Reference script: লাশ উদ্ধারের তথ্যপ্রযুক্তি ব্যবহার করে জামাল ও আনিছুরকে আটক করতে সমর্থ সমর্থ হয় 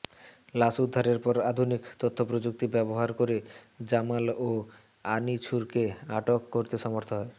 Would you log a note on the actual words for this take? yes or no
yes